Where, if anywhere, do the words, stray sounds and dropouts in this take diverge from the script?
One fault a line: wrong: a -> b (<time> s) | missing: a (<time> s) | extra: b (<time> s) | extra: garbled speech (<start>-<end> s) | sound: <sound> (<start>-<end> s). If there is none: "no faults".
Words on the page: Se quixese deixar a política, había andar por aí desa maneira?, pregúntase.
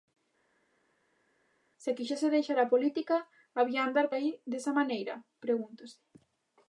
missing: por (4.1 s)